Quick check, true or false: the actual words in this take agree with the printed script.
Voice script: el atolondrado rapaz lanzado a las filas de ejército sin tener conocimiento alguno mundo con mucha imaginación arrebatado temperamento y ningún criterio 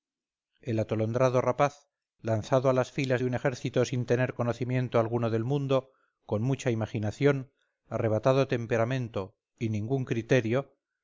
false